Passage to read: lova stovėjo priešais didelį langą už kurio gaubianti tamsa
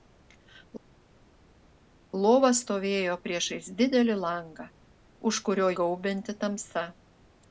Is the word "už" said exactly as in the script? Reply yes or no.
yes